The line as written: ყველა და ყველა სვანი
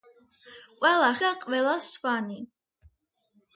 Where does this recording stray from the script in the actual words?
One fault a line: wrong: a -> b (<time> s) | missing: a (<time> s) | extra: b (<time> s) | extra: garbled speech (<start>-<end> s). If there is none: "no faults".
no faults